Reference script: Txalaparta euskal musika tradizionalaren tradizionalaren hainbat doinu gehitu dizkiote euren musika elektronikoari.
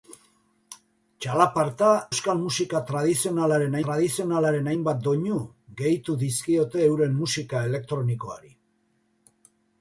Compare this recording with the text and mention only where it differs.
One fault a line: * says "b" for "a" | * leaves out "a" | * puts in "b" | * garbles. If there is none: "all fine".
all fine